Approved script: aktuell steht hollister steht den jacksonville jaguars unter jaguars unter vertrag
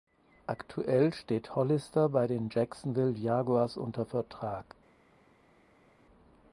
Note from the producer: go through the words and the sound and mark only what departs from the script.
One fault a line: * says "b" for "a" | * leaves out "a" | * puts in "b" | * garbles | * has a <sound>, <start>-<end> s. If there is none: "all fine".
* says "bei" for "steht"
* leaves out "jaguars unter"